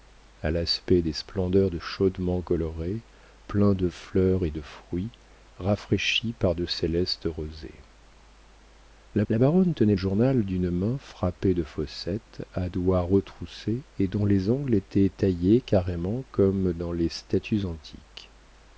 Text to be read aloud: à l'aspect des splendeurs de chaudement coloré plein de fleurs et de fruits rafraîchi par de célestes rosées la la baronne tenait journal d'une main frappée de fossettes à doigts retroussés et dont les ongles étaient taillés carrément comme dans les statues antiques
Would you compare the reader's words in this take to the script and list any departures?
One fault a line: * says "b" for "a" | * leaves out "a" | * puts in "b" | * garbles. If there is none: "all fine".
all fine